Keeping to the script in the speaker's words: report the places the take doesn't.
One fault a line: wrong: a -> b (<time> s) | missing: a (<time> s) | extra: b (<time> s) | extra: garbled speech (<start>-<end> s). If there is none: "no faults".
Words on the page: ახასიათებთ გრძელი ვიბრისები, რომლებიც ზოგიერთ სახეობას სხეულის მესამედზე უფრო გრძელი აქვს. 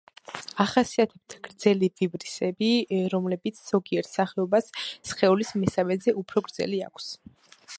no faults